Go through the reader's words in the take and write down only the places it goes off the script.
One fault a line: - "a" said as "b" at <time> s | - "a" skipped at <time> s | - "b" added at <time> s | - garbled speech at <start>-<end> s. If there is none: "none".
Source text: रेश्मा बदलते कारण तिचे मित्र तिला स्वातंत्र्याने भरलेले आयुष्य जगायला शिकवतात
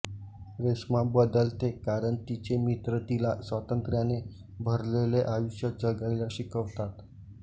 none